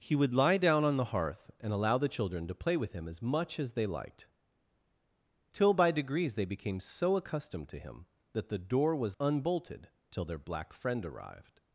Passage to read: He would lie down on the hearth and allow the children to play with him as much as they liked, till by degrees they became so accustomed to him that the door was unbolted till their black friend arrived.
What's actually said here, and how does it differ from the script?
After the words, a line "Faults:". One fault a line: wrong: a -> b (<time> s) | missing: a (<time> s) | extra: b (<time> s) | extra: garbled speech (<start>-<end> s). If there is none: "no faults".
He would lie down on the hearth and allow the children to play with him as much as they liked, till by degrees they became so accustomed to him that the door was unbolted till their black friend arrived.
Faults:
no faults